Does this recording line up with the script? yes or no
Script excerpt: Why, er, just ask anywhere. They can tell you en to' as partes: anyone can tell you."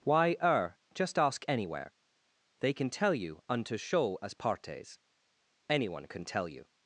no